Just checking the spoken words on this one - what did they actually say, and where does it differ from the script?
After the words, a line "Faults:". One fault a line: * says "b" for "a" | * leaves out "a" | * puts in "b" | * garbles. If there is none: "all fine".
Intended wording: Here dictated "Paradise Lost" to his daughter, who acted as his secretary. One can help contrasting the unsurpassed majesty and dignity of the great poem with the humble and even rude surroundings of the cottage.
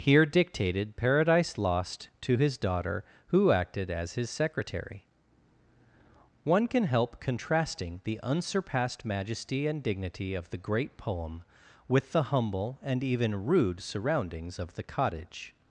Here dictated "Paradise Lost" to his daughter, who acted as his secretary. One can help contrasting the unsurpassed majesty and dignity of the great poem with the humble and even rude surroundings of the cottage.
Faults:
all fine